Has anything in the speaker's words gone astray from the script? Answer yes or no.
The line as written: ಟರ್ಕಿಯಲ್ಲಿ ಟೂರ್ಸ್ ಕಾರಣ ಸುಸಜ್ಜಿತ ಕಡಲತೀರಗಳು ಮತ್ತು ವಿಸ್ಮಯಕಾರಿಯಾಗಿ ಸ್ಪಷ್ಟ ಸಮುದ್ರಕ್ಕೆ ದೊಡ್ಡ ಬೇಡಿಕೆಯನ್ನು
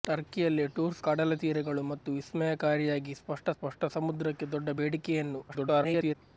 yes